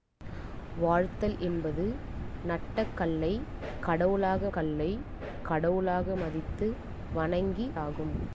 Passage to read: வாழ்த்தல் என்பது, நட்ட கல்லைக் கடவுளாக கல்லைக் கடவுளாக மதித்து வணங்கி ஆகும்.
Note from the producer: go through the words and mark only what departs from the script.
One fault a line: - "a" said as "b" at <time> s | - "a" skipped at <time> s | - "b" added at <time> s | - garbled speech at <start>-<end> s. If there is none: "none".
none